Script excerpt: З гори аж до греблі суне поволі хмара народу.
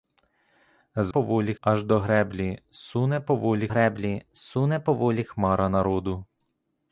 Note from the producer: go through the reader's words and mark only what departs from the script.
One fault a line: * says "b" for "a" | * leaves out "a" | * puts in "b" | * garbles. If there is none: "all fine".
* says "поволі" for "гори"
* puts in "греблі суне поволі"